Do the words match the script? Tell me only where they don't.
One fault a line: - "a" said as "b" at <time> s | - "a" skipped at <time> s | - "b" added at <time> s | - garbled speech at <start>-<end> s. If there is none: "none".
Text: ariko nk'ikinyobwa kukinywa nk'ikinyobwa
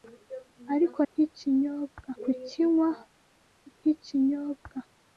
none